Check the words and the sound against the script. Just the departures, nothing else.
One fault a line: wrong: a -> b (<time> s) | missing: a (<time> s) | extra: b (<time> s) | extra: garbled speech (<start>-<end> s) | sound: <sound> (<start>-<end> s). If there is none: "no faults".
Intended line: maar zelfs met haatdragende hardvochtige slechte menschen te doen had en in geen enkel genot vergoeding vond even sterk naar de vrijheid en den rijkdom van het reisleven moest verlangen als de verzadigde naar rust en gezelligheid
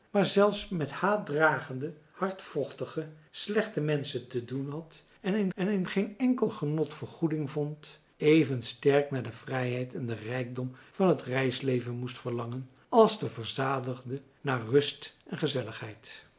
extra: en in (5.5 s)